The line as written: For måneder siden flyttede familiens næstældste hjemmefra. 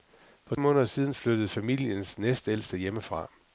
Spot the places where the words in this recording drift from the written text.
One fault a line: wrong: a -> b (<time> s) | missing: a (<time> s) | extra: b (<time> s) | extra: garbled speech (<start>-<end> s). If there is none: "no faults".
no faults